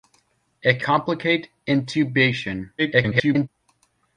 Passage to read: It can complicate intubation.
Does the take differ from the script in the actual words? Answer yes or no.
yes